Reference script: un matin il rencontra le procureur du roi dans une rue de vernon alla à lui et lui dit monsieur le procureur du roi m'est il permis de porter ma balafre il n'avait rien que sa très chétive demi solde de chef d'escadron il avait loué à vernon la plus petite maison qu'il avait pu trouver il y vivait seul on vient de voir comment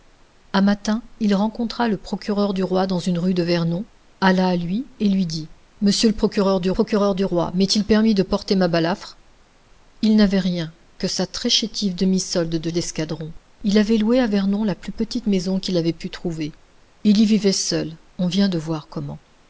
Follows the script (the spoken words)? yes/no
no